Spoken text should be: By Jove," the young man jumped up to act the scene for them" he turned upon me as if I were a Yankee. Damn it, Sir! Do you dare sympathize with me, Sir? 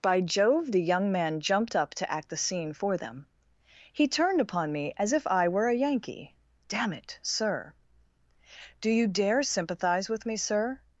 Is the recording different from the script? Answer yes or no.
no